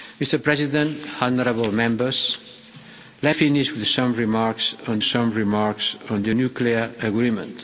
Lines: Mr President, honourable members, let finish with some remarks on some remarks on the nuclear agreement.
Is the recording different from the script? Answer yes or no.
no